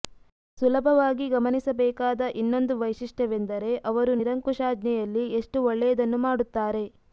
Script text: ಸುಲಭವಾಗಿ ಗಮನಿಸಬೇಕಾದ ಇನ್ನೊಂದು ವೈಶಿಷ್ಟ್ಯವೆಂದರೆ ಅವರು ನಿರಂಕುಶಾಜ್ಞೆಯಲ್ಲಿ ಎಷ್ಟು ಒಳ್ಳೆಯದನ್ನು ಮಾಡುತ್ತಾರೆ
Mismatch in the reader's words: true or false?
false